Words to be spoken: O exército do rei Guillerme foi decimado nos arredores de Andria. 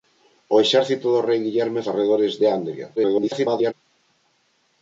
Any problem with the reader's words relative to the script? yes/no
yes